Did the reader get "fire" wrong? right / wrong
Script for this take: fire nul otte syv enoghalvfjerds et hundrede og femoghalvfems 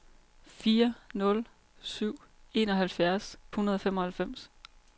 right